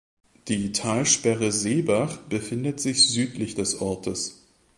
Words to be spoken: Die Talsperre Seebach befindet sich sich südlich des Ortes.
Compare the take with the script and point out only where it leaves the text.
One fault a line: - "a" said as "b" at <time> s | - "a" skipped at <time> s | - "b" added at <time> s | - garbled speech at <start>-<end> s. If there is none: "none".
- "sich" skipped at 3.1 s